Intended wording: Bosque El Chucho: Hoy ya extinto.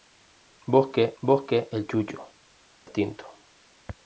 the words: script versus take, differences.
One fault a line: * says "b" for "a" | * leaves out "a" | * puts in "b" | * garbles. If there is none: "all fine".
* puts in "bosque"
* leaves out "Hoy ya"